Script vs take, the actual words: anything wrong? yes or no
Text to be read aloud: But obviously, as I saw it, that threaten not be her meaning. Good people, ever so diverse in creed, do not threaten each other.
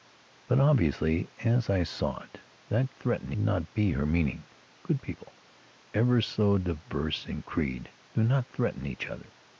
no